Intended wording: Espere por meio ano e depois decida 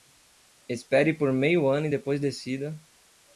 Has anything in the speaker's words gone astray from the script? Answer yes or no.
no